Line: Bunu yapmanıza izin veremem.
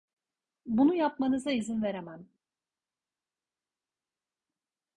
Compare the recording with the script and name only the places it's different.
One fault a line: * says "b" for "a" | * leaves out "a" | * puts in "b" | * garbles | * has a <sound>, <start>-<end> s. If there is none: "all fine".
all fine